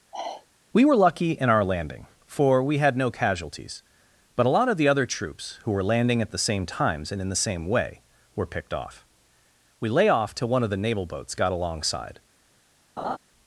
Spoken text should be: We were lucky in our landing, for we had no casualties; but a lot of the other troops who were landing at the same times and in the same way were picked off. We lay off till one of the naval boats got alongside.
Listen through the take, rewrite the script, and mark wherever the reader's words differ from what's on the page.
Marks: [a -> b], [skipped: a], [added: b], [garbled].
We were lucky in our landing, for we had no casualties; but a lot of the other troops who were landing at the same times and in the same way were picked off. We lay off till one of the naval boats got alongside.